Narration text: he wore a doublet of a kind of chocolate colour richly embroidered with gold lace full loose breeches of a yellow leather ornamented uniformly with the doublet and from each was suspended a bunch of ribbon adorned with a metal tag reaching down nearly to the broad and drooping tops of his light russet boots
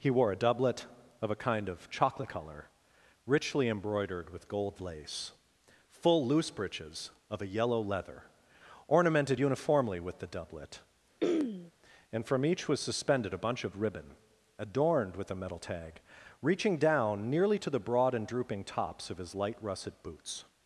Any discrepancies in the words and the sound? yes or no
yes